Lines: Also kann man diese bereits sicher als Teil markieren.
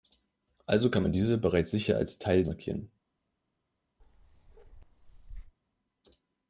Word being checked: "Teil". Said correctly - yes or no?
yes